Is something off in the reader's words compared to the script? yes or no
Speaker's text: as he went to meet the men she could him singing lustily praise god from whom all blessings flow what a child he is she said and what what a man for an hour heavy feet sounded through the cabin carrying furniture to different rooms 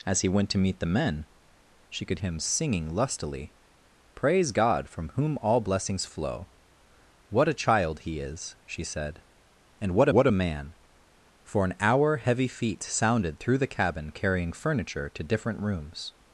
no